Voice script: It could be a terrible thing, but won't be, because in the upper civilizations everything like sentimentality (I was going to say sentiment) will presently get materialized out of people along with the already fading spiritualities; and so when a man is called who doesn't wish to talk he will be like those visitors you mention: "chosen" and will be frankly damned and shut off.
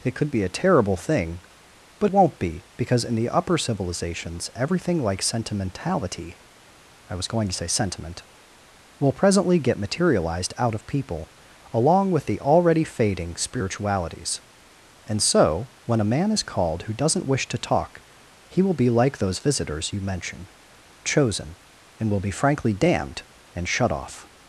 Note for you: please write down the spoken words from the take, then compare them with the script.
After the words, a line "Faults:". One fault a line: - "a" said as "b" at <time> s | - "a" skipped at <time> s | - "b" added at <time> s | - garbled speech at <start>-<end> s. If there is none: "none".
It could be a terrible thing, but won't be, because in the upper civilizations everything like sentimentality (I was going to say sentiment) will presently get materialized out of people along with the already fading spiritualities; and so when a man is called who doesn't wish to talk he will be like those visitors you mention: "chosen" and will be frankly damned and shut off.
Faults:
none